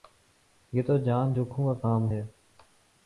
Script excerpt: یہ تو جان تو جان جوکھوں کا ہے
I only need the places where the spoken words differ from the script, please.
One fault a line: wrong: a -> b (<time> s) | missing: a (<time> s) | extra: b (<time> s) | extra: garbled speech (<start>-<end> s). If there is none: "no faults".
missing: تو جان (1.3 s)
extra: کام (1.8 s)